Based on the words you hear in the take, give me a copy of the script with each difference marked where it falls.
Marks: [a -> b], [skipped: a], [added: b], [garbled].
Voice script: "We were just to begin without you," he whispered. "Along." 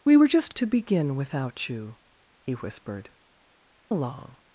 "We were just to begin without you," he whispered. "Along."